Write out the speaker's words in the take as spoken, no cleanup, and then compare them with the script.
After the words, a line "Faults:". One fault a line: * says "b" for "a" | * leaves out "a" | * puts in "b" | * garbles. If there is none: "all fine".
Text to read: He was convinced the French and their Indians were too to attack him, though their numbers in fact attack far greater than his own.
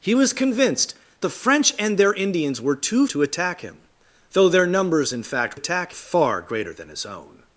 He was convinced the French and their Indians were too to attack him, though their numbers in fact attack far greater than his own.
Faults:
all fine